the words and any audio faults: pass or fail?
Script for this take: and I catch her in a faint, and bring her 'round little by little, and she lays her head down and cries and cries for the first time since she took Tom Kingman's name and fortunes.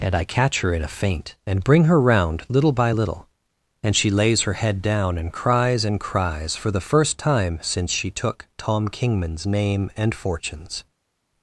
pass